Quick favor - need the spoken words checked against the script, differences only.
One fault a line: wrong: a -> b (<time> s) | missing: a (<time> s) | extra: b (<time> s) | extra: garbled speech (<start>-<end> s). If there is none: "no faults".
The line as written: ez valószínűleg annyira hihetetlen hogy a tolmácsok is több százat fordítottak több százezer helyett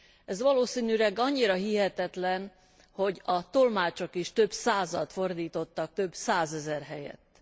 no faults